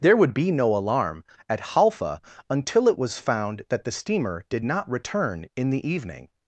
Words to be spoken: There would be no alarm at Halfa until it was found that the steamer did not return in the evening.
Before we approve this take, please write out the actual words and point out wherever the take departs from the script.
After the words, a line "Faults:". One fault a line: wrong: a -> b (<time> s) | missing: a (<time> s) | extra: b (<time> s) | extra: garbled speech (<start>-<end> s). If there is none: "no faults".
There would be no alarm at Halfa until it was found that the steamer did not return in the evening.
Faults:
no faults